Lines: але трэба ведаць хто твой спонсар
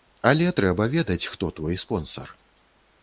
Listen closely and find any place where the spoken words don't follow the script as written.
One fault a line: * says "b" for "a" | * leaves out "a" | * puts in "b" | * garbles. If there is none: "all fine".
all fine